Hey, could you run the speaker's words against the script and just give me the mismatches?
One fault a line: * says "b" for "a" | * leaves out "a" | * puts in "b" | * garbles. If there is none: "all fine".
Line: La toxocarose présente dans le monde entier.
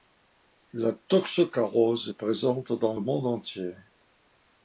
* puts in "est"